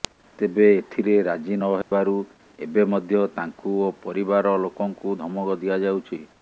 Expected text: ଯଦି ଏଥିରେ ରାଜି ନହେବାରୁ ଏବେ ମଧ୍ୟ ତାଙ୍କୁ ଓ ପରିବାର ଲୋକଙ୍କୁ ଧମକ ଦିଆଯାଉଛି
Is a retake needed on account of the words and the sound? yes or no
yes